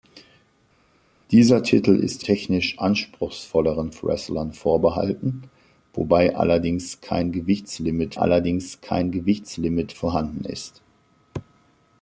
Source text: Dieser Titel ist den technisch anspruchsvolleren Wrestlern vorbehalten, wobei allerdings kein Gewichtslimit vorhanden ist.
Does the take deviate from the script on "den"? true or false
true